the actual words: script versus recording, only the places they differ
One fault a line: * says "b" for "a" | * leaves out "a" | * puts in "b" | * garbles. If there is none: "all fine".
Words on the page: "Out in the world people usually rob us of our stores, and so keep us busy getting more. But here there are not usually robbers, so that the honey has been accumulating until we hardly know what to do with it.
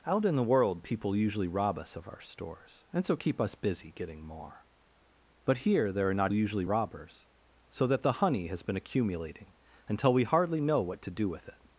all fine